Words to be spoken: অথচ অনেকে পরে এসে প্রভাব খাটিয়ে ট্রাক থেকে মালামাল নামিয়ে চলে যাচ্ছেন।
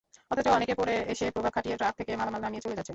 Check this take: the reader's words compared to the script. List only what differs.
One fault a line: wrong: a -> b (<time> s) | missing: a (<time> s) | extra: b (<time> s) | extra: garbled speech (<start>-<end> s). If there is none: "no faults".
no faults